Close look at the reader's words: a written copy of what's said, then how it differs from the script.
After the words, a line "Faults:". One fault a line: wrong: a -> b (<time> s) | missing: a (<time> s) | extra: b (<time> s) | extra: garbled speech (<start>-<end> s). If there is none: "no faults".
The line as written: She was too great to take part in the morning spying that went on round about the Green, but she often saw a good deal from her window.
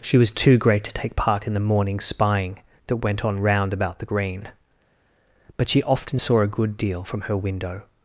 She was too great to take part in the morning spying that went on round about the Green, but she often saw a good deal from her window.
Faults:
no faults